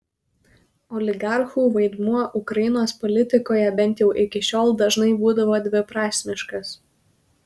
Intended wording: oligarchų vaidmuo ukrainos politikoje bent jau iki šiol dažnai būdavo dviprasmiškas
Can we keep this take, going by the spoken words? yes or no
yes